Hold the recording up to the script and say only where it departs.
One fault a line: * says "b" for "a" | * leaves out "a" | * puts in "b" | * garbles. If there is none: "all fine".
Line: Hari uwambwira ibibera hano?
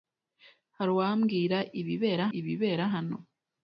* puts in "ibibera"